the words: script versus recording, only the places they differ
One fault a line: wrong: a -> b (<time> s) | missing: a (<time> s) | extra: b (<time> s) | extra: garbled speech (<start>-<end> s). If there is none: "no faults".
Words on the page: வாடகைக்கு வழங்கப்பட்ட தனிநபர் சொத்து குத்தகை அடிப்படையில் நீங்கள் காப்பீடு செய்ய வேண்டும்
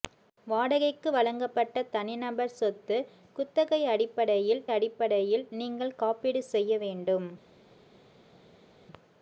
extra: அடிப்படையில் (4.7 s)